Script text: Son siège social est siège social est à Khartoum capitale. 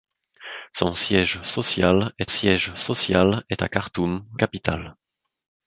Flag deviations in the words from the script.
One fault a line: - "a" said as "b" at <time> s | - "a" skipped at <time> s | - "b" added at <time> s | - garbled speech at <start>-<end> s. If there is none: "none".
none